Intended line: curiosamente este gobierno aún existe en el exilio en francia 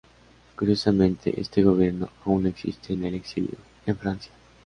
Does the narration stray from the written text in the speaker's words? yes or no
no